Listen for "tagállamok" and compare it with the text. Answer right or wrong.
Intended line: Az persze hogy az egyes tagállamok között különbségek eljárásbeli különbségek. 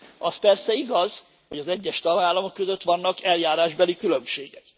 right